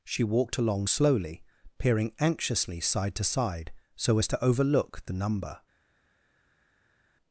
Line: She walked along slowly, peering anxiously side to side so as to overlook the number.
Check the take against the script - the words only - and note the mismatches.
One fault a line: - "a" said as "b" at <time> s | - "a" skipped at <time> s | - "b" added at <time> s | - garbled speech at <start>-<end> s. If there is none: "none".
none